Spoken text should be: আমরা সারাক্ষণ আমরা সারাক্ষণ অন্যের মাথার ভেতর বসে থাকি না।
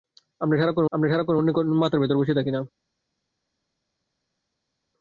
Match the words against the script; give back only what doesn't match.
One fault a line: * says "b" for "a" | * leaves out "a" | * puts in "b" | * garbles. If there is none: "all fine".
all fine